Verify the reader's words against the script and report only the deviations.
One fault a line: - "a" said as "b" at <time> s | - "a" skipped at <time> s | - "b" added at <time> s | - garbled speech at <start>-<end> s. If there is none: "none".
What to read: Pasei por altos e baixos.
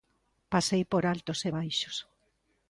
none